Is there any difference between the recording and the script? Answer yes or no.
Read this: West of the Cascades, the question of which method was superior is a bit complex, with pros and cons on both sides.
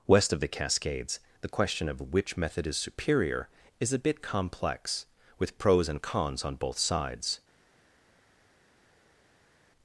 yes